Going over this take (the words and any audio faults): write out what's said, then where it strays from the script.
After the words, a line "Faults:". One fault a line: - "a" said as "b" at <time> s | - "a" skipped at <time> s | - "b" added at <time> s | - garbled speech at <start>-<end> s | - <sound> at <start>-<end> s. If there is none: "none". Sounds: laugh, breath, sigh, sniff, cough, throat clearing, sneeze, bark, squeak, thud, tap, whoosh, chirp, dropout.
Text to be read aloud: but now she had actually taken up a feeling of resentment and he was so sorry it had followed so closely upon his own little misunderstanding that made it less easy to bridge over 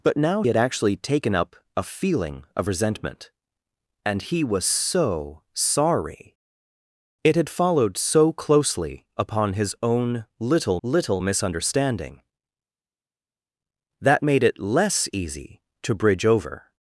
but now had actually taken up a feeling of resentment and he was so sorry it had followed so closely upon his own little little misunderstanding that made it less easy to bridge over
Faults:
- "she" skipped at 0.4 s
- "little" added at 10.8 s